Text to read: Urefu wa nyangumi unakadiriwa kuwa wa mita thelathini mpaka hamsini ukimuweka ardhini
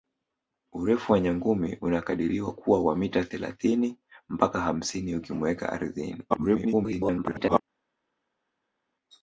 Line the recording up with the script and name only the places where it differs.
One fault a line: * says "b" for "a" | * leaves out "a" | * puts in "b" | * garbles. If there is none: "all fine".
* garbles